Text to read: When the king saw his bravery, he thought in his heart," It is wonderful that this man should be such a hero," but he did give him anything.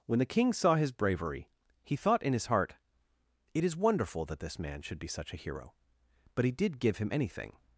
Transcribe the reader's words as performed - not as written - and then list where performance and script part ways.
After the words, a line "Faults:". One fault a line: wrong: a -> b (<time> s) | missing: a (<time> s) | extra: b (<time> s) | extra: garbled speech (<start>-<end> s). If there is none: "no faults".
When the king saw his bravery, he thought in his heart," It is wonderful that this man should be such a hero," but he did give him anything.
Faults:
no faults